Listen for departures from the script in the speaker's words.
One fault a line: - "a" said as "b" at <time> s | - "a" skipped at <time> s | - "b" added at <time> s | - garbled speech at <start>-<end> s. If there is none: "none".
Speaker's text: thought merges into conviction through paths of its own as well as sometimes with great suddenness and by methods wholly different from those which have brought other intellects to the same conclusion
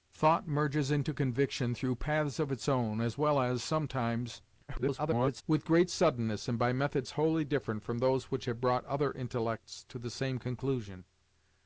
- garbled speech at 4.7-5.4 s